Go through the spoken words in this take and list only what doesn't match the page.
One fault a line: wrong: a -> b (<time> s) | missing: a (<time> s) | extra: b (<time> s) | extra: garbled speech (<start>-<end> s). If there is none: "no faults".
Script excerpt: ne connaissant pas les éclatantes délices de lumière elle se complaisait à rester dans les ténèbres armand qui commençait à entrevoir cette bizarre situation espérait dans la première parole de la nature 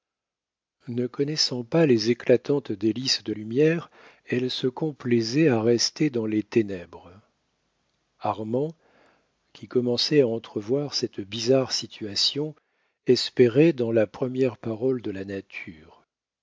no faults